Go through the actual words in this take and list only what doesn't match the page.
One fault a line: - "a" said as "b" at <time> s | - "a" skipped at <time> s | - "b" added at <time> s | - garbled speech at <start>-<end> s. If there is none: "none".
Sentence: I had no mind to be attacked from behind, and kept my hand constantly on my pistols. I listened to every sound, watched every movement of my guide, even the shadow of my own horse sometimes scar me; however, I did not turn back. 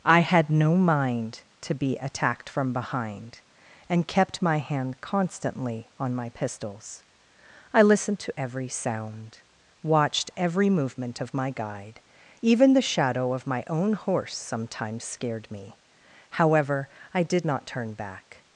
- "scar" said as "scared" at 15.0 s